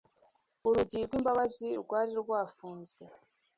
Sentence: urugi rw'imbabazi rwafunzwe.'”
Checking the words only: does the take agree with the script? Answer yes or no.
no